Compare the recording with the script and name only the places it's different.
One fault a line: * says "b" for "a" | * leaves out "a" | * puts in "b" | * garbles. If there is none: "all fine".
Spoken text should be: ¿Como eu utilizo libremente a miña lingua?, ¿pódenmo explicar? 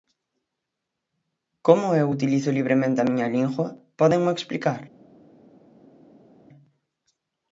all fine